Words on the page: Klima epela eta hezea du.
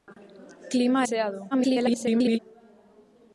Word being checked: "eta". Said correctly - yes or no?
no